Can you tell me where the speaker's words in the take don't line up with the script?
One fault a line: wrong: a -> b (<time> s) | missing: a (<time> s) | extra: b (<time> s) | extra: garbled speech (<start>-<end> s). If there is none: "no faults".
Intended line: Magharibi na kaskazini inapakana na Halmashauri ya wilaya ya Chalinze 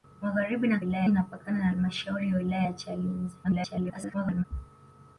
wrong: kaskazini -> wilaya (0.8 s)
extra: garbled speech (3.4-4.4 s)